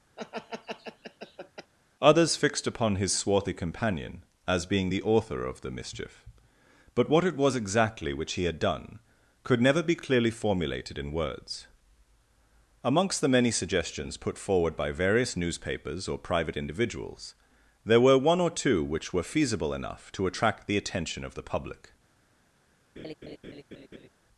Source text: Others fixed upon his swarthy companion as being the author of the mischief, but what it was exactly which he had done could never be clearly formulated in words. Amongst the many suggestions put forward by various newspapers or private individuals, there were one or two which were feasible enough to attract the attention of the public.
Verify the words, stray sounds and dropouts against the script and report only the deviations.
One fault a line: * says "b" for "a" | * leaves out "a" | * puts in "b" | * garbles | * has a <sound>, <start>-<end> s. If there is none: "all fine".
* has a laugh, 0.2-1.7 s
* has a laugh, 23.0-24.1 s